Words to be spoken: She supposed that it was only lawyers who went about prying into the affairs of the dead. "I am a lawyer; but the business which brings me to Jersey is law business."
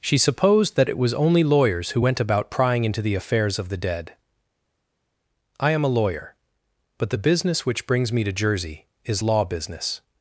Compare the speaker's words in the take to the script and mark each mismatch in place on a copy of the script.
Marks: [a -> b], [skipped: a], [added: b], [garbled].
She supposed that it was only lawyers who went about prying into the affairs of the dead. "I am a lawyer; but the business which brings me to Jersey is law business."